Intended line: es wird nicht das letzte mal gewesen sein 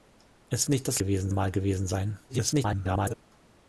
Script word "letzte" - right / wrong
wrong